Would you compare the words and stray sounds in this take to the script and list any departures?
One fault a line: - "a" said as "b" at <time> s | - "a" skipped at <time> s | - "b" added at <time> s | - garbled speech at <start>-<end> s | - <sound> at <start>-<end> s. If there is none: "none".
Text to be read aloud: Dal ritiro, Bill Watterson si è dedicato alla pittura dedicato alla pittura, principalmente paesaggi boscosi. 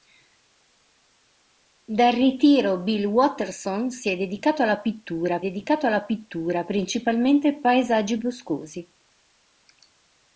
none